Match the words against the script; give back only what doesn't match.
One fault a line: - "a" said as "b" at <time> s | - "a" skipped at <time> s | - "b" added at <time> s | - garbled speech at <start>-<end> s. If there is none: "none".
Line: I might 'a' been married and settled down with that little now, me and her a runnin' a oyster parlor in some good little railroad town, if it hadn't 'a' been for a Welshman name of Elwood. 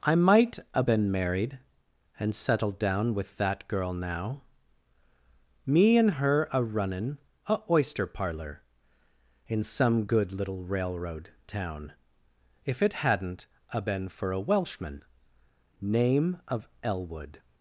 - "little" said as "girl" at 3.7 s